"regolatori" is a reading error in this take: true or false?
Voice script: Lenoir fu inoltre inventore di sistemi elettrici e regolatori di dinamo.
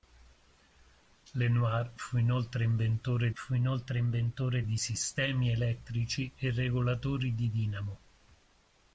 false